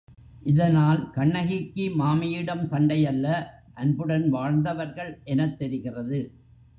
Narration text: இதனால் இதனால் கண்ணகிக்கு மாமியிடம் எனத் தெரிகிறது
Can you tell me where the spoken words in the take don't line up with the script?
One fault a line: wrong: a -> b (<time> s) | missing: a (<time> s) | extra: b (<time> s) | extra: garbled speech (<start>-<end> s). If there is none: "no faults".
missing: இதனால் (1.1 s)
extra: சண்டையல்ல அன்புடன் வாழ்ந்தவர்கள் (2.7 s)